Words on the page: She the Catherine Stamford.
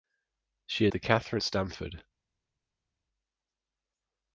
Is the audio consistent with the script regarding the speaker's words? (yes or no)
yes